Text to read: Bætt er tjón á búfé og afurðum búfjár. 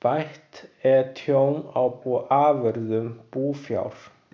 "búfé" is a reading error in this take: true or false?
true